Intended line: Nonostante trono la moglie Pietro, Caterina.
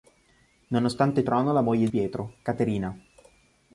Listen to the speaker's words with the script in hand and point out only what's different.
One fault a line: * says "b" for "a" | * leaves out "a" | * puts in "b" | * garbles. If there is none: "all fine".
all fine